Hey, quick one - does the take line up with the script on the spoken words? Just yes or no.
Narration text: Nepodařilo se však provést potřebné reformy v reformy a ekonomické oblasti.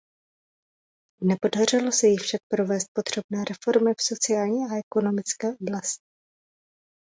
no